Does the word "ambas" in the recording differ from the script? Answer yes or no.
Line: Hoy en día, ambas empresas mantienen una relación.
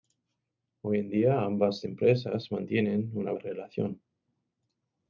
no